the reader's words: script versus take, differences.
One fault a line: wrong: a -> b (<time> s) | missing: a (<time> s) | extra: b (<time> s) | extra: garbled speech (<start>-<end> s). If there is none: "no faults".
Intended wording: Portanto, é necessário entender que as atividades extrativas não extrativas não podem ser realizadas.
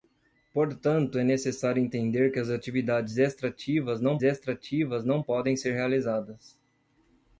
no faults